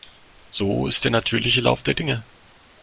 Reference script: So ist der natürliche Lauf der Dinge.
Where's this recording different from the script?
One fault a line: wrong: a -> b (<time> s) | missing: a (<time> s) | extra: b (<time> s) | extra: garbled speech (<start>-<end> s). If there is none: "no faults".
no faults